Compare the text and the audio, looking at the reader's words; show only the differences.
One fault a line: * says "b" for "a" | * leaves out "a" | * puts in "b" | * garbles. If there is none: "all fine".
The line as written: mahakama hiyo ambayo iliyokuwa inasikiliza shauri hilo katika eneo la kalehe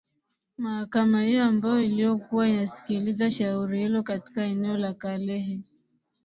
all fine